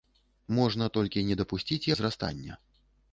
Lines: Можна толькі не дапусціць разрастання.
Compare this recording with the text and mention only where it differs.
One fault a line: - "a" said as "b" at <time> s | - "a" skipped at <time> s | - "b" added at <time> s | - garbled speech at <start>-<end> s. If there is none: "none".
none